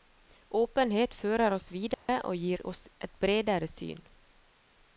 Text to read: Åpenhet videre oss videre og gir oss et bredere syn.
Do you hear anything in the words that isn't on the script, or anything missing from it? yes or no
yes